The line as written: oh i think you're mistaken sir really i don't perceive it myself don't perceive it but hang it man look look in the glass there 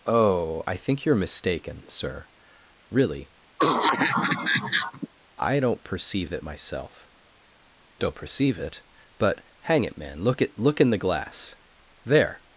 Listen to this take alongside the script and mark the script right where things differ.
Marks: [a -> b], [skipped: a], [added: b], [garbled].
oh i think you're mistaken sir really i don't perceive it myself don't perceive it but hang it man look [added: at] look in the glass there